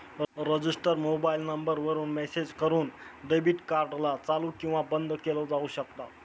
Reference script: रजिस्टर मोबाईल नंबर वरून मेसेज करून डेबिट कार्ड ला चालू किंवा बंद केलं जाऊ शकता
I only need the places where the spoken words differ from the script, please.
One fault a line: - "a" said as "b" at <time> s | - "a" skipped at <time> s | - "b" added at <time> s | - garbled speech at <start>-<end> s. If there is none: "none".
none